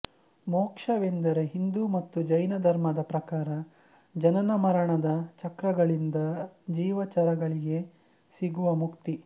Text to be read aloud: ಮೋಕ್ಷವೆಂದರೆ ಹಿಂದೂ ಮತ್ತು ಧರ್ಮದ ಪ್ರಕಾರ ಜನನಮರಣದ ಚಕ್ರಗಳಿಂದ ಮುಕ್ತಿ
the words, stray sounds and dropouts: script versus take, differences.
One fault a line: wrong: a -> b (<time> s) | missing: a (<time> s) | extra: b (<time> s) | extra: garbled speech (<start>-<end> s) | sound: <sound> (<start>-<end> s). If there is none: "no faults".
extra: ಜೈನ (2.2 s)
extra: ಜೀವಚರಗಳಿಗೆ ಸಿಗುವ (6.7 s)